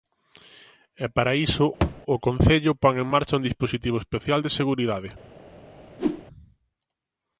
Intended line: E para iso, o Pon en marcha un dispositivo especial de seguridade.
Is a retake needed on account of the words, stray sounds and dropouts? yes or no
yes